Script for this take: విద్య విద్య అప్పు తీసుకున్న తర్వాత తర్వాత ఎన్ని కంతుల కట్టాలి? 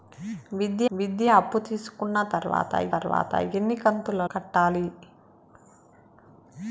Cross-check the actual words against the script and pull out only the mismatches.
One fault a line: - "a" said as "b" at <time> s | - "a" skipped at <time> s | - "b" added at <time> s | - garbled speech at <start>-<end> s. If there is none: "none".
none